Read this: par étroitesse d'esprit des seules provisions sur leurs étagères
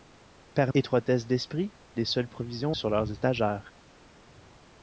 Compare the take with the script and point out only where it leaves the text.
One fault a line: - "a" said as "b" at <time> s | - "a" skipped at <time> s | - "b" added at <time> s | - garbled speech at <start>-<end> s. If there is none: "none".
none